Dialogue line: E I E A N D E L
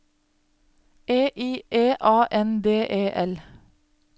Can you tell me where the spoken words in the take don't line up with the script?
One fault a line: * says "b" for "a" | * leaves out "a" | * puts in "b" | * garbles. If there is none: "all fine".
all fine